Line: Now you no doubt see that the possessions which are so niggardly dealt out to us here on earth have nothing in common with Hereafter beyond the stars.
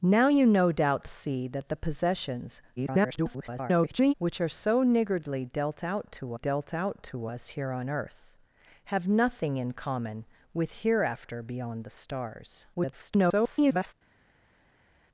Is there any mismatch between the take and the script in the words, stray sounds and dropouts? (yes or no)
yes